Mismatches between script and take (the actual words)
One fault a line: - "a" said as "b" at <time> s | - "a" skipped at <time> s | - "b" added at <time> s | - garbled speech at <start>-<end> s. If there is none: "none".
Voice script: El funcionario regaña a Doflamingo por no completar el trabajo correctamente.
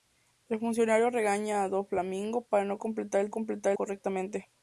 - "trabajo" said as "completar" at 3.3 s